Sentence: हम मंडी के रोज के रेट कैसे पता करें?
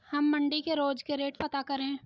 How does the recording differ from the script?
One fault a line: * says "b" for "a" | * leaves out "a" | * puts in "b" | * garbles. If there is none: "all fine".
* leaves out "कैसे"